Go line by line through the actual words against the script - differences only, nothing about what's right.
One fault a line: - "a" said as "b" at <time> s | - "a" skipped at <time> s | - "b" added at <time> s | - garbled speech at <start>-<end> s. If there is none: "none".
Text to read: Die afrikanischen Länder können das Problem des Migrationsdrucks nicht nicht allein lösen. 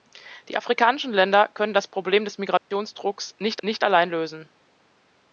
none